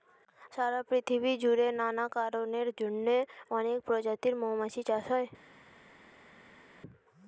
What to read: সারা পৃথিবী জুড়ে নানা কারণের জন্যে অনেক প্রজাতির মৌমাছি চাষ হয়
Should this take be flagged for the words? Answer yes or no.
no